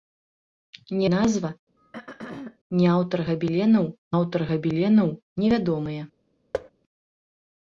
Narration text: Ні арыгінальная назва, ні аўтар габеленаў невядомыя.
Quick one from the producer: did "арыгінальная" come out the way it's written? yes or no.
no